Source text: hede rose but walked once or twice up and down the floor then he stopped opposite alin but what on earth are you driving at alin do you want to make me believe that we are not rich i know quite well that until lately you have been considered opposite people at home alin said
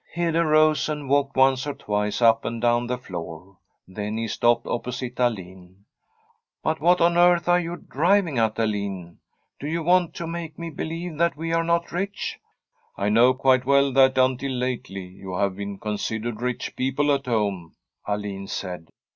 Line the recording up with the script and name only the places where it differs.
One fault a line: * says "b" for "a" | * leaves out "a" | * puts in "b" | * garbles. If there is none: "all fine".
* says "and" for "but"
* says "rich" for "opposite"